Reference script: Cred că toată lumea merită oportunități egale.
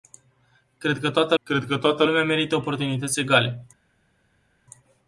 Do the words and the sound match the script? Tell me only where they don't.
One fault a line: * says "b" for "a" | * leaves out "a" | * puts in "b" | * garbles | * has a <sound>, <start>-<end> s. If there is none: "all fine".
* puts in "cred că toată"